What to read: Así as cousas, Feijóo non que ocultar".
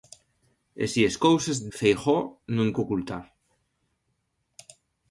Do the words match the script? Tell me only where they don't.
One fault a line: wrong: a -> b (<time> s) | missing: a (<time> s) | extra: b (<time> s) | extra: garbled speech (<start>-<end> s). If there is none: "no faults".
no faults